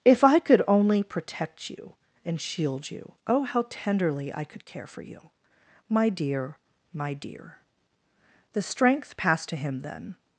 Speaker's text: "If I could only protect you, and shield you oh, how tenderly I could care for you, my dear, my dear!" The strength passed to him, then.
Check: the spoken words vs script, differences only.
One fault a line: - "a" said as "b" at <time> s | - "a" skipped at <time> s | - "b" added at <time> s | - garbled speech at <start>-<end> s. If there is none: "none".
none